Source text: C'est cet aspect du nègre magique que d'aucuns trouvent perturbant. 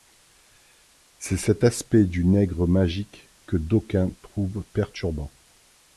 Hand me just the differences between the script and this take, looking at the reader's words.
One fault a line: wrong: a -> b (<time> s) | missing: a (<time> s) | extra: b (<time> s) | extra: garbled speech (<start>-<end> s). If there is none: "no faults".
no faults